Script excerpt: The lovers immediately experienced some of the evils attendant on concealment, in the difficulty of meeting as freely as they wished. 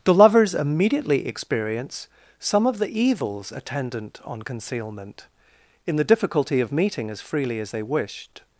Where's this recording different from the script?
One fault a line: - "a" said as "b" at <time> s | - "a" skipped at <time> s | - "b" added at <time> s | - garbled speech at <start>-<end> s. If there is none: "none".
- "experienced" said as "experience" at 1.3 s